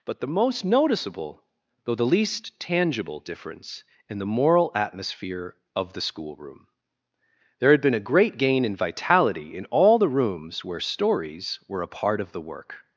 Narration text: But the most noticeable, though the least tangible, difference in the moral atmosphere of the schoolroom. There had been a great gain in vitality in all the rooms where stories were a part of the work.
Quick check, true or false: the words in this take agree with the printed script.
true